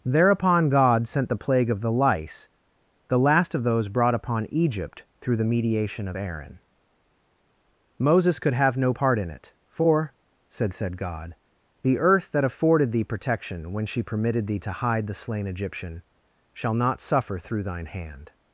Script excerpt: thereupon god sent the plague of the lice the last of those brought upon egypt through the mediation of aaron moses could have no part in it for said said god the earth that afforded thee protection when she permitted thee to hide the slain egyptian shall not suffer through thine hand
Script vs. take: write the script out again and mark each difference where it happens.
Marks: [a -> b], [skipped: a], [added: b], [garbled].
thereupon god sent the plague of the lice the last of those brought upon egypt through the mediation of aaron moses could have no part in it for said said god the earth that afforded thee protection when she permitted thee to hide the slain egyptian shall not suffer through thine hand